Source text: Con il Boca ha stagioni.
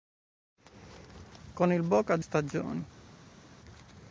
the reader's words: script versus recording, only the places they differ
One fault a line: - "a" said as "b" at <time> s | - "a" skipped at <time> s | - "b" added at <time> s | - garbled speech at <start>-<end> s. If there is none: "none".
none